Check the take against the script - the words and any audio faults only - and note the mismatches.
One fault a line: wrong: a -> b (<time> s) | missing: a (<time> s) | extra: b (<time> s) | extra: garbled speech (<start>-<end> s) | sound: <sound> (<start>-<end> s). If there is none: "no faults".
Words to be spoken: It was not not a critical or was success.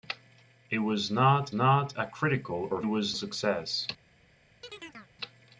sound: chirp (4.6-5.1 s)